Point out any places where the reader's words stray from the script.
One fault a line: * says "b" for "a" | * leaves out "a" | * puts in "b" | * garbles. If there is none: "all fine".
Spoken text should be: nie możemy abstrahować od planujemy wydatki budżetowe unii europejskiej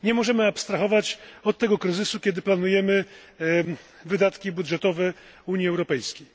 * puts in "tego kryzysu kiedy"